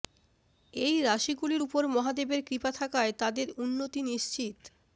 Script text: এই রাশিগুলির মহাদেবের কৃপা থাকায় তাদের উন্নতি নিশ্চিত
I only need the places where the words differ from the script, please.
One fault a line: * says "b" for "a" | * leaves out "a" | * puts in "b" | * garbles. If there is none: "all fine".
* puts in "উপর"